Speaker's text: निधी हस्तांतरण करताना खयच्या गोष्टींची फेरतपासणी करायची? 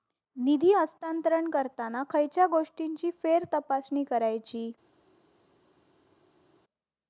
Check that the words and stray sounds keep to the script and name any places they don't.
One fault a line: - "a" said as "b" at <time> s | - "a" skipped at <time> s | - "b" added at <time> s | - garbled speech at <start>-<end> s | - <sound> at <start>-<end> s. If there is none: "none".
none